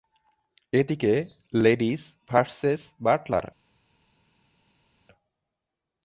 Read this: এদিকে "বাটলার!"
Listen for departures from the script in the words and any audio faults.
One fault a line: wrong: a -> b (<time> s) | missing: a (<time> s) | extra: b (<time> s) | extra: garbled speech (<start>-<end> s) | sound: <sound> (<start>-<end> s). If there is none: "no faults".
extra: লেডিস ভার্সেস (1.5 s)